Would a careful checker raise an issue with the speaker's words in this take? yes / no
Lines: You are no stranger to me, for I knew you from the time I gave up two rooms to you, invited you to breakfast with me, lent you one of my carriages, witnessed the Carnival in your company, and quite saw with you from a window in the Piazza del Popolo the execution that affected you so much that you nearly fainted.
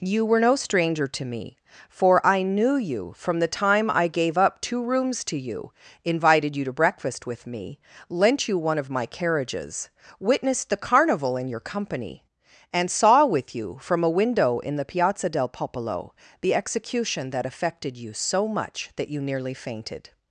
yes